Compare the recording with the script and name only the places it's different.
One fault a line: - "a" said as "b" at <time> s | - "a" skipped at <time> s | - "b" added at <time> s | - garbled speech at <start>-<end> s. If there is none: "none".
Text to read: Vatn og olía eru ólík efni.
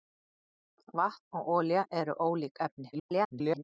- garbled speech at 2.9-3.6 s